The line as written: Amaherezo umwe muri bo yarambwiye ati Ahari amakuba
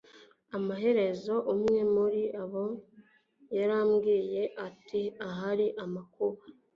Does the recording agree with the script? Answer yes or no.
yes